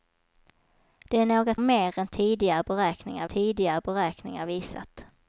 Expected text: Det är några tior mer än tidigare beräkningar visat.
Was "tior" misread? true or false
true